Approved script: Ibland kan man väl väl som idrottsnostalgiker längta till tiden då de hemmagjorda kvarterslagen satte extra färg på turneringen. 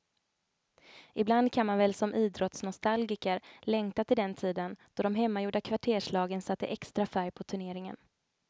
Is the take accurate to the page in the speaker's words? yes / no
no